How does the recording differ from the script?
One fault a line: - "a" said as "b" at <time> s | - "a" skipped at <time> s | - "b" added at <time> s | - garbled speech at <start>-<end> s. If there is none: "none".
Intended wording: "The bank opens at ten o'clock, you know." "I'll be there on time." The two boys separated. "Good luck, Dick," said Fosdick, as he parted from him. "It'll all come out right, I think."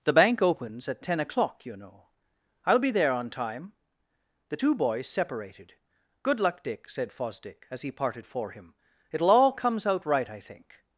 - "from" said as "for" at 8.3 s
- "come" said as "comes" at 9.5 s